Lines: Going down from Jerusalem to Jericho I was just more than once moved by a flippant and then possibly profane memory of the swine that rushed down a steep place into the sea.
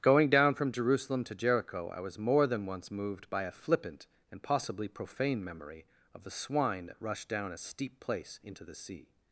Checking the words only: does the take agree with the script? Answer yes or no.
no